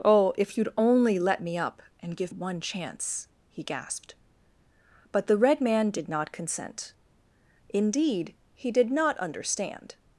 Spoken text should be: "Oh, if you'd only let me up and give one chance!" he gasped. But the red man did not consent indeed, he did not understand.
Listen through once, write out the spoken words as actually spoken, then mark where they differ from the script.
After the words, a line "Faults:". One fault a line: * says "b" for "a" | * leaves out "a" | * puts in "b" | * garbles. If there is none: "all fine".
"Oh, if you'd only let me up and give one chance!" he gasped. But the red man did not consent indeed, he did not understand.
Faults:
all fine